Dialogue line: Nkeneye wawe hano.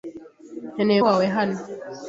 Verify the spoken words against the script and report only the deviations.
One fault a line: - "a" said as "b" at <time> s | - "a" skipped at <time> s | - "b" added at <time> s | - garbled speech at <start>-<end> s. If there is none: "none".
none